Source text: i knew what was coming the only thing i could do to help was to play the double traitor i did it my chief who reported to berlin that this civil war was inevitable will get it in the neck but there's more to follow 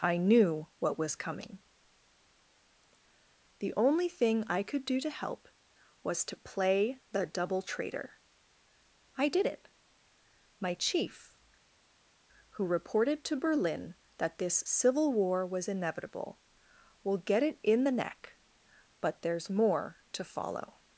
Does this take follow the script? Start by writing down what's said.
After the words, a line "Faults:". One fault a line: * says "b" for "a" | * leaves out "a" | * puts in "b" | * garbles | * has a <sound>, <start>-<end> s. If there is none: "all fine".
i knew what was coming the only thing i could do to help was to play the double traitor i did it my chief who reported to berlin that this civil war was inevitable will get it in the neck but there's more to follow
Faults:
all fine